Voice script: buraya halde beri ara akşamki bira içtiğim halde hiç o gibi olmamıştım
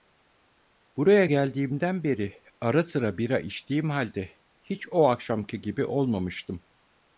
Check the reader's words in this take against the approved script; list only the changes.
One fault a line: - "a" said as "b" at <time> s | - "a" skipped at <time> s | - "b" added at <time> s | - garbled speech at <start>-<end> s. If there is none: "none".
- "halde" said as "geldiğimden" at 1.2 s
- "akşamki" said as "sıra" at 2.8 s
- "akşamki" added at 5.1 s